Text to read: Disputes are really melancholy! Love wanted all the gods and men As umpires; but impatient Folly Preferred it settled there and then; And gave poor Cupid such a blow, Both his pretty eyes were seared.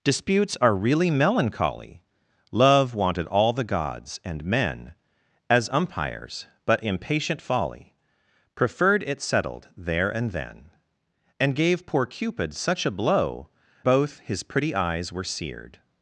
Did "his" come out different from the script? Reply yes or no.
no